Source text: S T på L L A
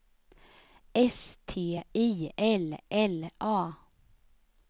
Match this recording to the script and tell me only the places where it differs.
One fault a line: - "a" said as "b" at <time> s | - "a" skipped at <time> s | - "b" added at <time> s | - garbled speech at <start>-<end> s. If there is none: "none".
- "på" said as "I" at 1.7 s